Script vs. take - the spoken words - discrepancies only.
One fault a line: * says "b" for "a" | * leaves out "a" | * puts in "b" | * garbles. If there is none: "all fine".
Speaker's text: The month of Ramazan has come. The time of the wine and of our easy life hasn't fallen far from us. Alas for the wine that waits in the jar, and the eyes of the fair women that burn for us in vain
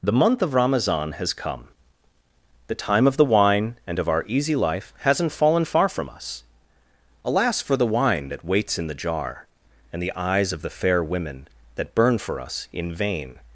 all fine